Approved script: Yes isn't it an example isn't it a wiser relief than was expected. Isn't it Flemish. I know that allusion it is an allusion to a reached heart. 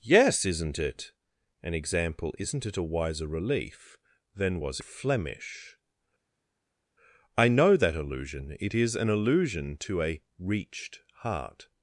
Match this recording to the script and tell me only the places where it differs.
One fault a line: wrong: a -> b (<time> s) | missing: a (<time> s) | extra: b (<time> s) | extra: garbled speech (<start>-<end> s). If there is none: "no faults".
missing: expected Isn't it (4.8 s)